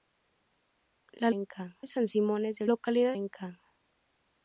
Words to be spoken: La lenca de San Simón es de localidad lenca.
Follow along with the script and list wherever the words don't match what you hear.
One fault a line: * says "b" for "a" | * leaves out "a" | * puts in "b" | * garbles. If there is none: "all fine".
all fine